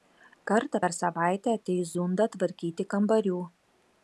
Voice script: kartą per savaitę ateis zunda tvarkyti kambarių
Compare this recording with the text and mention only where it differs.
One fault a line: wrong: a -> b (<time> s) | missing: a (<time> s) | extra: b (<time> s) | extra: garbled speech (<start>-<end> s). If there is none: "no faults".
no faults